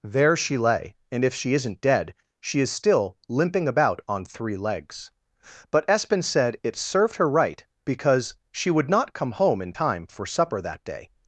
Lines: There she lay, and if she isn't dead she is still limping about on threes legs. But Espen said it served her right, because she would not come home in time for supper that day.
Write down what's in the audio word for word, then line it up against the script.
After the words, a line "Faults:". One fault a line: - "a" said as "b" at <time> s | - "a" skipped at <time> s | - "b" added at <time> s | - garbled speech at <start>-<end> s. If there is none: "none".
There she lay, and if she isn't dead she is still limping about on three legs. But Espen said it served her right, because she would not come home in time for supper that day.
Faults:
- "threes" said as "three" at 4.2 s